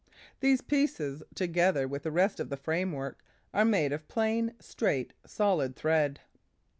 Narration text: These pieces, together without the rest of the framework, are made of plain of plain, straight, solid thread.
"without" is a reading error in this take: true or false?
true